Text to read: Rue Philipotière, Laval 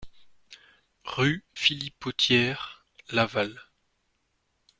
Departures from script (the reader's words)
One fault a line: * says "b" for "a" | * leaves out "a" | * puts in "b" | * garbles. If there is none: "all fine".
all fine